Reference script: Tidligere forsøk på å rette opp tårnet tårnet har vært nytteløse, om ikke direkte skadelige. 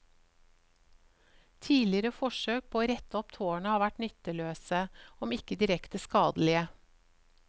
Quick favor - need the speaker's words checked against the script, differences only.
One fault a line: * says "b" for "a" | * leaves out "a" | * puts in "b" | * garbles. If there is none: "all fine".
* leaves out "tårnet"